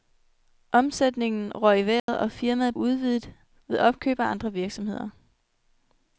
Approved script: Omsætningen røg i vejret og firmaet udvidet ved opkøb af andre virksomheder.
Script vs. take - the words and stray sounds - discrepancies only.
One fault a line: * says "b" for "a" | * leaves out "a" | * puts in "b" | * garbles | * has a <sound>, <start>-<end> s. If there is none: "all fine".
* has a dropout, 2.0-2.1 s